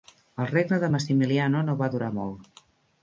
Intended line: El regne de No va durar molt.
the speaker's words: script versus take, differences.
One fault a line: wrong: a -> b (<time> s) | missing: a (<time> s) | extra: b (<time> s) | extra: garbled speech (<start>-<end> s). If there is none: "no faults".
extra: Massimiliano (0.9 s)